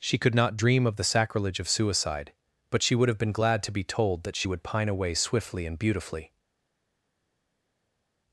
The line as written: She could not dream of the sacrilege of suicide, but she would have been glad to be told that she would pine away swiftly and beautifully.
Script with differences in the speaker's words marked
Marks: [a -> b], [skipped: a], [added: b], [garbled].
She could not dream of the sacrilege of suicide, but she would have been glad to be told that she would pine away swiftly and beautifully.